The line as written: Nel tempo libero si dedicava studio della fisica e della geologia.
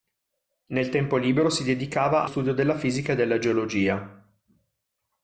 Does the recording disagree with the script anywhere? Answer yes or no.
no